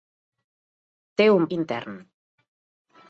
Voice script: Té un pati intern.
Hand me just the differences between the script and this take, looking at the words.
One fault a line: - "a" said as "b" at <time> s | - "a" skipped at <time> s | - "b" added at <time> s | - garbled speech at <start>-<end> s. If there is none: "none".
- "pati" skipped at 1.4 s